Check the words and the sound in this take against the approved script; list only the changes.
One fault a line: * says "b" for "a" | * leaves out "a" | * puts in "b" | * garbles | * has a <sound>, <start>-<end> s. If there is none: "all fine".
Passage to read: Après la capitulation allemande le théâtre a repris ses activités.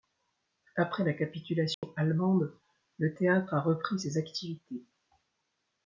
* has a dropout, 1.7-1.8 s